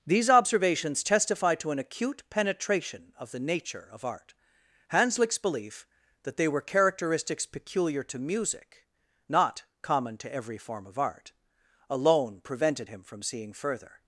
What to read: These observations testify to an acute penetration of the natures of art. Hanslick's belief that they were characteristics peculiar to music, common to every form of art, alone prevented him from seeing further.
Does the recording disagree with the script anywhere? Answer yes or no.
yes